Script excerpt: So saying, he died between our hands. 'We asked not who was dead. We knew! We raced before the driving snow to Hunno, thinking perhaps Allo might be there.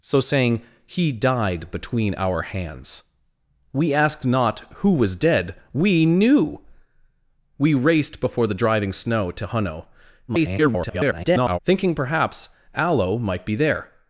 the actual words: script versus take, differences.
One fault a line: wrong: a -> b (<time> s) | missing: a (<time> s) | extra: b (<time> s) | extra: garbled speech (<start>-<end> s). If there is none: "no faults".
extra: garbled speech (10.3-11.6 s)